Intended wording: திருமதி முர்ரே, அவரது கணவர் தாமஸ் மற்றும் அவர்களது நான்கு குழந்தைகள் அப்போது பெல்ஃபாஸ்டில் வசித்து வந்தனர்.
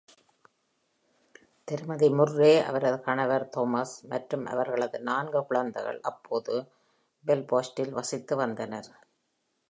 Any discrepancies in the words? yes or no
no